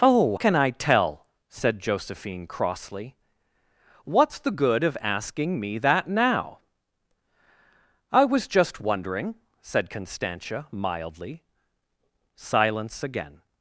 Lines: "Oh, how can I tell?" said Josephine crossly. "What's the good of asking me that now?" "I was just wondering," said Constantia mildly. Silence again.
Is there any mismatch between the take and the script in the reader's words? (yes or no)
yes